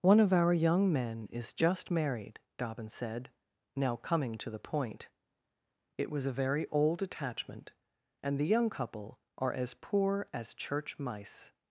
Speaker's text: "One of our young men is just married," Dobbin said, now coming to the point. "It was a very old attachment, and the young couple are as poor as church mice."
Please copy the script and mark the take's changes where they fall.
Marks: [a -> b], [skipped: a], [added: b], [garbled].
"One of our young men is just married," Dobbin said, now coming to the point. "It was a very old attachment, and the young couple are as poor as church mice."